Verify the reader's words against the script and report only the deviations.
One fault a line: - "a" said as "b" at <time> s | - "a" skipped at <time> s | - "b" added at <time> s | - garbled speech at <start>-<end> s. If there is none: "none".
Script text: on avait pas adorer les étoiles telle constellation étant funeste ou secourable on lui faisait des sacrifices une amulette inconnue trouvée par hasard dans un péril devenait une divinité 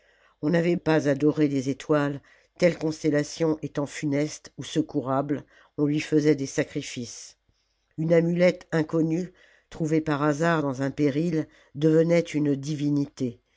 none